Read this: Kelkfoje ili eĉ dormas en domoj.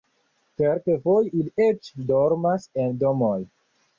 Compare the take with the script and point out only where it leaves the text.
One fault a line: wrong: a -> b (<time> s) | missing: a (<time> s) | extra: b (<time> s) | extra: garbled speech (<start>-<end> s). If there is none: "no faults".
no faults